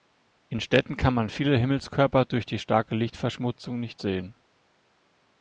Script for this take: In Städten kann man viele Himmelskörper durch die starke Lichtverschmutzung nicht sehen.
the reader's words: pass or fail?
pass